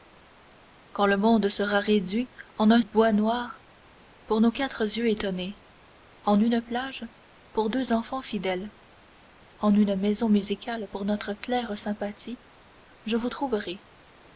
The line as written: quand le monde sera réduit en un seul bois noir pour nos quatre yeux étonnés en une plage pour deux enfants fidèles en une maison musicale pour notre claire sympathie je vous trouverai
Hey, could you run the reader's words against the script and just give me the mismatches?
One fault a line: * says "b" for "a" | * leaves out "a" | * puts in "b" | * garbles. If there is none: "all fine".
* leaves out "seul"